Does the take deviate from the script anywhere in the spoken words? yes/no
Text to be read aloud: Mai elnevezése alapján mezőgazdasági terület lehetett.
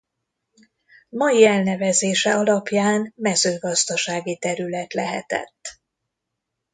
no